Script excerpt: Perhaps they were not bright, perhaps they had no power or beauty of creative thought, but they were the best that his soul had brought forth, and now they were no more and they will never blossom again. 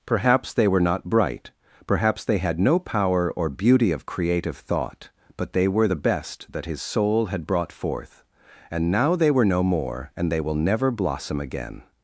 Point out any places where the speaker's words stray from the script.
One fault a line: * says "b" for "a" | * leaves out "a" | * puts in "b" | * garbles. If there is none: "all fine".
all fine